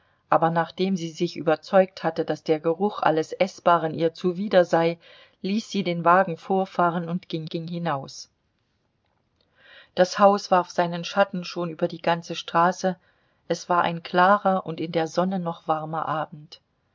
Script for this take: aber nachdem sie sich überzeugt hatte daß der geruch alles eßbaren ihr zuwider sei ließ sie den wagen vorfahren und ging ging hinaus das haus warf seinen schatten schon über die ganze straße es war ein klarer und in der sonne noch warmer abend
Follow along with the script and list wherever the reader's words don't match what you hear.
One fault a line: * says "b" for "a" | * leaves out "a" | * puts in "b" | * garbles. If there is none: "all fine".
all fine